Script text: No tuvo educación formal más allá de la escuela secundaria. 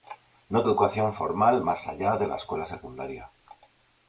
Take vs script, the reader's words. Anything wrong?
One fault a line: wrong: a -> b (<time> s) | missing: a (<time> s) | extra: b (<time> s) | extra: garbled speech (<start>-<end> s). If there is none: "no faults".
missing: tuvo (0.6 s)